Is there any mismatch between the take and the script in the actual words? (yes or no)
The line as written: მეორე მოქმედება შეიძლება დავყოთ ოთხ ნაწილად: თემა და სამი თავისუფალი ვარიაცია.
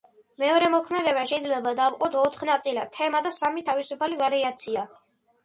no